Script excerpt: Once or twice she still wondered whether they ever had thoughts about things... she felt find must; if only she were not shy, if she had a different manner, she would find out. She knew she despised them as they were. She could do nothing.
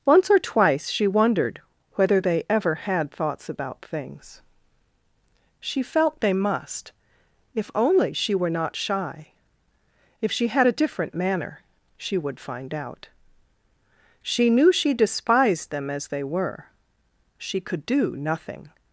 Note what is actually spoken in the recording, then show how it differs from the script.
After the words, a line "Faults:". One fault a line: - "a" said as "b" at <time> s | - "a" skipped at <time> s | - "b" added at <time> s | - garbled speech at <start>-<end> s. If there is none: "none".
Once or twice she wondered whether they ever had thoughts about things... she felt they must; if only she were not shy, if she had a different manner, she would find out. She knew she despised them as they were. She could do nothing.
Faults:
- "still" skipped at 1.1 s
- "find" said as "they" at 6.2 s